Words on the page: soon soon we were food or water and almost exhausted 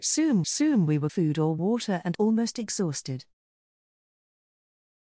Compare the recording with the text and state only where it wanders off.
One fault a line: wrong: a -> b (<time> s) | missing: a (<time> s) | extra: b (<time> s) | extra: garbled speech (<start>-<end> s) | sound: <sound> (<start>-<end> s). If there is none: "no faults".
no faults